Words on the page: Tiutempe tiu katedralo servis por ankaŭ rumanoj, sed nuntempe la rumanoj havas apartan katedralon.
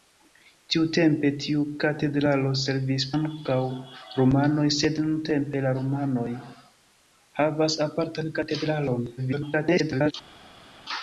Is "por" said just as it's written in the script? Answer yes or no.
no